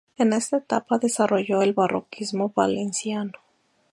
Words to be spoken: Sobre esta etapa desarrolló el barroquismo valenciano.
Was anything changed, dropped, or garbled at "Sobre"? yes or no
yes